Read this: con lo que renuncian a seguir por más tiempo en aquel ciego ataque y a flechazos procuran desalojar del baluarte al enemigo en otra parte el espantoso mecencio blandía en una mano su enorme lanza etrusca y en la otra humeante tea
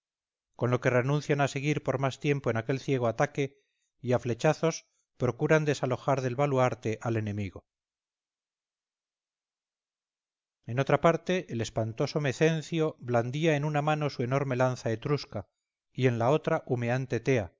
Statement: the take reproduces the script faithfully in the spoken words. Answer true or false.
true